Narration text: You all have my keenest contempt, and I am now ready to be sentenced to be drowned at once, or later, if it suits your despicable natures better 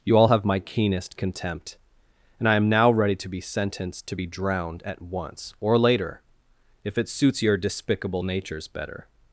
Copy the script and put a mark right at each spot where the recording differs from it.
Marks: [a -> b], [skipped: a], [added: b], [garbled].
You all have my keenest contempt, and I am now ready to be sentenced to be drowned at once, or later, if it suits your despicable natures better